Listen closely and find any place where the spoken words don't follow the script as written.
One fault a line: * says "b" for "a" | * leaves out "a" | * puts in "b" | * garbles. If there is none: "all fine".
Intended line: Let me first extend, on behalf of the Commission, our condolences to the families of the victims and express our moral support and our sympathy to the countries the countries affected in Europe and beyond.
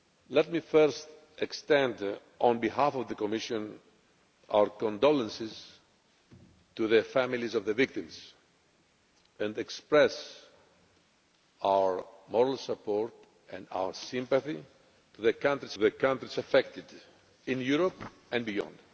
all fine